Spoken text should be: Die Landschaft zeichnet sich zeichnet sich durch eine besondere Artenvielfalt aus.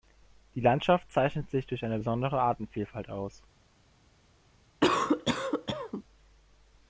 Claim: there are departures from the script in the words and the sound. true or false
true